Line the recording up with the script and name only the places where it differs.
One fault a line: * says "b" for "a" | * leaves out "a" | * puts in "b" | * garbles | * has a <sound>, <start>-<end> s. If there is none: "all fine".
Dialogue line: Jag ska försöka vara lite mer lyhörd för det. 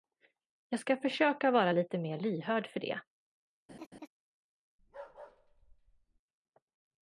* has a laugh, 3.7-4.1 s
* has a bark, 4.8-6.2 s